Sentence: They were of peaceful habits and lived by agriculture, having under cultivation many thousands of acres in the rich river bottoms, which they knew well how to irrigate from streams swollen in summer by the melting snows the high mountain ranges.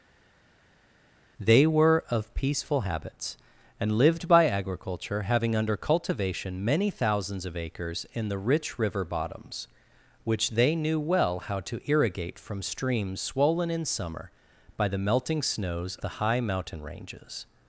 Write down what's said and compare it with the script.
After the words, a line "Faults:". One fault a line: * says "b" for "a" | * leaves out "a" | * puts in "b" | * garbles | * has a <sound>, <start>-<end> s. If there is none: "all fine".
They were of peaceful habits and lived by agriculture, having under cultivation many thousands of acres in the rich river bottoms, which they knew well how to irrigate from streams swollen in summer by the melting snows the high mountain ranges.
Faults:
all fine